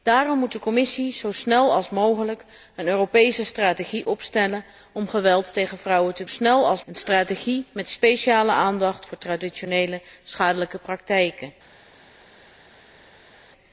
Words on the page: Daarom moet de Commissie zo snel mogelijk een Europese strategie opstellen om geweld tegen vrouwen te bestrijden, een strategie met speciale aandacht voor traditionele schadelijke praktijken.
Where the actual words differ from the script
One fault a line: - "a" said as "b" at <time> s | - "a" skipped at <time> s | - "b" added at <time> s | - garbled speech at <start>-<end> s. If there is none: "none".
- "bestrijden" said as "snel" at 6.3 s